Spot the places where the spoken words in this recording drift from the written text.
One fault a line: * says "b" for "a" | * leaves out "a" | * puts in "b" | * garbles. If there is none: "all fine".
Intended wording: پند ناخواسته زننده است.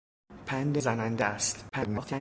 * leaves out "ناخواسته"
* garbles